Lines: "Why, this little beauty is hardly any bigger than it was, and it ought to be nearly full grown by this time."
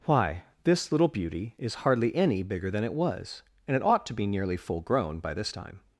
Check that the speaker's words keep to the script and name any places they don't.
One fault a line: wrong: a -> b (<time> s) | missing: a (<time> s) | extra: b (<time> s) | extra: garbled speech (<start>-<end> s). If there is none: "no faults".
no faults